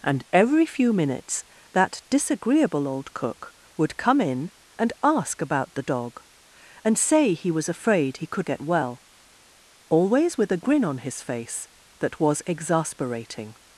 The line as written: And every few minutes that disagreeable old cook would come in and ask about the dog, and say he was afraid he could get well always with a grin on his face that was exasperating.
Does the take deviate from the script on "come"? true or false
false